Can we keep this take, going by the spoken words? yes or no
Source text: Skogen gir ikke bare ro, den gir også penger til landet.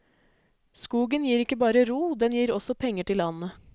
yes